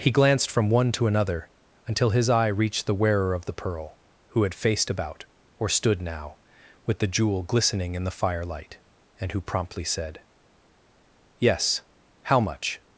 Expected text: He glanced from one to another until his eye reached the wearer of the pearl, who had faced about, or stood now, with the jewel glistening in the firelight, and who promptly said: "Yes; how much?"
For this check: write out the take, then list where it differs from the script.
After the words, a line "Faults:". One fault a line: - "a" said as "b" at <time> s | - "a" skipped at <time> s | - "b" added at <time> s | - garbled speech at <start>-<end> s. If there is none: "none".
He glanced from one to another until his eye reached the wearer of the pearl, who had faced about, or stood now, with the jewel glistening in the firelight, and who promptly said: "Yes; how much?"
Faults:
none